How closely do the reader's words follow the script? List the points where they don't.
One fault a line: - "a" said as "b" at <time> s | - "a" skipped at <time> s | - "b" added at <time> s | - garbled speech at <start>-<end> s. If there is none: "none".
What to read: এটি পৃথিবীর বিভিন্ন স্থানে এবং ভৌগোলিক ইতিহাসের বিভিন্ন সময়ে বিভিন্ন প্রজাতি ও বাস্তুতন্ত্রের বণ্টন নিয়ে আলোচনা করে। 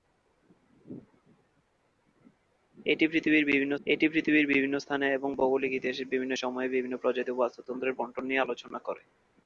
- "এটি পৃথিবীর বিভিন্ন" added at 3.9 s